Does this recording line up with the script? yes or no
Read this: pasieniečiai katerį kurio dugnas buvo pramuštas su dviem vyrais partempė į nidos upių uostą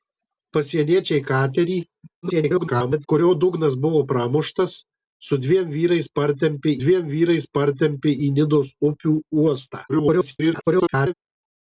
no